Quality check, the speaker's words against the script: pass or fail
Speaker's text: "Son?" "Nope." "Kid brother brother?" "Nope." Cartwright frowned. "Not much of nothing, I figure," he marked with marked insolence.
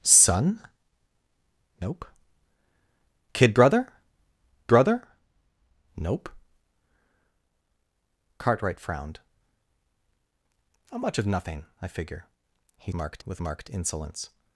pass